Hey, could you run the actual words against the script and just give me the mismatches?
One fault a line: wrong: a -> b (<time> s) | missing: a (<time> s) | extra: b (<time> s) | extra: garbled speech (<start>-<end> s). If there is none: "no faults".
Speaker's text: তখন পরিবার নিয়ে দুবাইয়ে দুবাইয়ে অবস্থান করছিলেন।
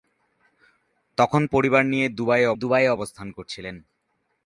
no faults